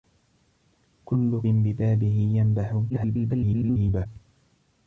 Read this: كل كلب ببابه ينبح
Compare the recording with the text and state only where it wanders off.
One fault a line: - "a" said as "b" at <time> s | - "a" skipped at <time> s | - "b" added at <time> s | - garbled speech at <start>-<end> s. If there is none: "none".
- "كلب" skipped at 1.4 s
- garbled speech at 2.9-4.1 s